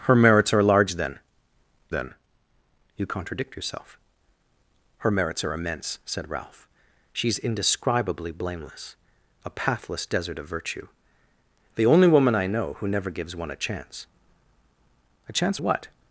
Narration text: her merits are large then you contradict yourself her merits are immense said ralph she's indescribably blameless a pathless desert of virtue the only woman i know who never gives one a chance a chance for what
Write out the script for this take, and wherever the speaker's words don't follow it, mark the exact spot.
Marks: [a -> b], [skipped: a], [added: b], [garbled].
her merits are large then [added: then] you contradict yourself her merits are immense said ralph she's indescribably blameless a pathless desert of virtue the only woman i know who never gives one a chance a chance [skipped: for] what